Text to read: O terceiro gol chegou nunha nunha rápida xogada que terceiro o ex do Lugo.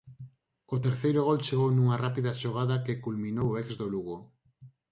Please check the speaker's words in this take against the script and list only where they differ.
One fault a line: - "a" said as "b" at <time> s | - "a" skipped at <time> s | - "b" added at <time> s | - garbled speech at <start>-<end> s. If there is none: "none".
- "nunha" skipped at 2.0 s
- "terceiro" said as "culminou" at 3.0 s